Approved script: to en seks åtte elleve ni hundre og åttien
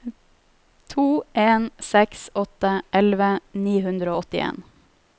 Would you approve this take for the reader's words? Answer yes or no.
yes